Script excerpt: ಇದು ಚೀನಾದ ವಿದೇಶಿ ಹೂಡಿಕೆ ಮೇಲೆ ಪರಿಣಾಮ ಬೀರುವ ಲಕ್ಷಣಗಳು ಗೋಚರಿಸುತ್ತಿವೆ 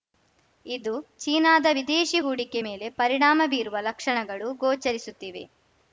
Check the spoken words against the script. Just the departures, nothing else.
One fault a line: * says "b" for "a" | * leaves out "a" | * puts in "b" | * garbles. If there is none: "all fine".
all fine